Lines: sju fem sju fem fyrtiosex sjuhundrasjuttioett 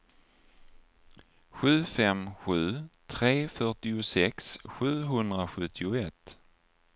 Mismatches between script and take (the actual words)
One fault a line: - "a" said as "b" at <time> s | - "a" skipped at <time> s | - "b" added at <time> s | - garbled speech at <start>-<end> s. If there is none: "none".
- "fem" said as "tre" at 3.1 s